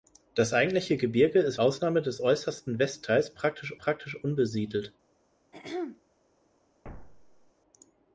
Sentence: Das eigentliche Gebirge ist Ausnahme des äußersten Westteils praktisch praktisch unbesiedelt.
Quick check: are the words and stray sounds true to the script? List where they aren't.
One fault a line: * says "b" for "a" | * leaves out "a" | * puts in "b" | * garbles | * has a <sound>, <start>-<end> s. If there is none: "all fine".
* has a throat clearing, 5.5-6.0 s
* has a thud, 6.8-7.5 s